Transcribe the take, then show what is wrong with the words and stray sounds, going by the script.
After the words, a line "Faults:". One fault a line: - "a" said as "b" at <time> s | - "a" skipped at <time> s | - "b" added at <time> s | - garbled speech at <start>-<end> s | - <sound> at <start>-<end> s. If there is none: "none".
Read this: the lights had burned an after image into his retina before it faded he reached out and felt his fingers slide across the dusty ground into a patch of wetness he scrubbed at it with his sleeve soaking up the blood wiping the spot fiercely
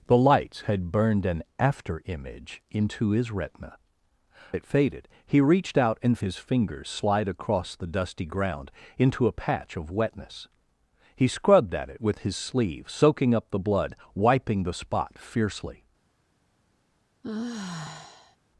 the lights had burned an after image into his retina it faded he reached out and his fingers slide across the dusty ground into a patch of wetness he scrubbed at it with his sleeve soaking up the blood wiping the spot fiercely
Faults:
- "before" skipped at 3.8 s
- "felt" skipped at 6.2 s
- sigh at 17.2-18.4 s